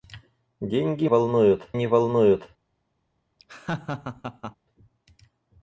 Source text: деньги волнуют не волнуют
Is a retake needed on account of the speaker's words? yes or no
no